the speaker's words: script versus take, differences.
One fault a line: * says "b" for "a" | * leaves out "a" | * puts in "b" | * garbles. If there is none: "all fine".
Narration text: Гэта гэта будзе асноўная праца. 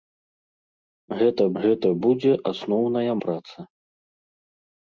all fine